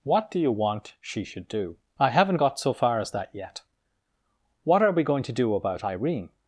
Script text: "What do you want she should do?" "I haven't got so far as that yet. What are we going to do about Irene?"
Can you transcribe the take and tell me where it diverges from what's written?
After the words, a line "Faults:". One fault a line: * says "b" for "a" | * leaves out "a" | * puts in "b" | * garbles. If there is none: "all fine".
"What do you want she should do?" "I haven't got so far as that yet. What are we going to do about Irene?"
Faults:
all fine